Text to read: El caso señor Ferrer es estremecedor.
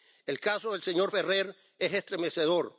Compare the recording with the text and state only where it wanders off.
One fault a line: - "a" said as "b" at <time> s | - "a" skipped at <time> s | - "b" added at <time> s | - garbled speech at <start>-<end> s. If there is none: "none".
- "del" added at 0.7 s